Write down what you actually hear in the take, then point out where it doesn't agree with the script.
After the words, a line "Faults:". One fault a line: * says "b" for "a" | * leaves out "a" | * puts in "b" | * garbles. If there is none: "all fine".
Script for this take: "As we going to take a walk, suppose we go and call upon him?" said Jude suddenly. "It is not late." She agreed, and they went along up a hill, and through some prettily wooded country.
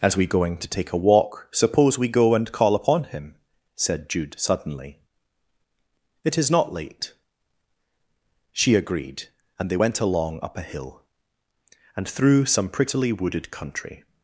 "As we going to take a walk, suppose we go and call upon him?" said Jude suddenly. "It is not late." She agreed, and they went along up a hill, and through some prettily wooded country.
Faults:
all fine